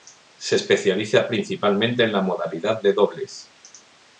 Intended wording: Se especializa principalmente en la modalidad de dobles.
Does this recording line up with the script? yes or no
yes